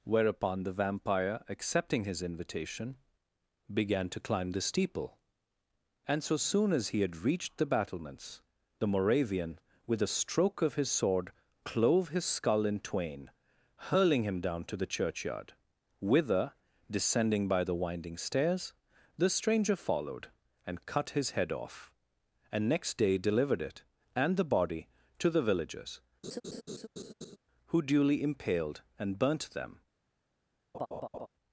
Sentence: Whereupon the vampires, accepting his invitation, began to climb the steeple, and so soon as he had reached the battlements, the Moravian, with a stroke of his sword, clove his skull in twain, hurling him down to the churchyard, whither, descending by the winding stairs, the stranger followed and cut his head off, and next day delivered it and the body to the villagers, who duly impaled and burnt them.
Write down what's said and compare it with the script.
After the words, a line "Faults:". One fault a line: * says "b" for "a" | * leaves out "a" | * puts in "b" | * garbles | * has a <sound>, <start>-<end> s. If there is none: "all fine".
Whereupon the vampire, accepting his invitation, began to climb the steeple, and so soon as he had reached the battlements, the Moravian, with a stroke of his sword, clove his skull in twain, hurling him down to the churchyard, whither, descending by the winding stairs, the stranger followed and cut his head off, and next day delivered it and the body to the villagers, who duly impaled and burnt them.
Faults:
* says "vampire" for "vampires"
* has a laugh, 26.2-27.4 s
* has a laugh, 30.7-31.3 s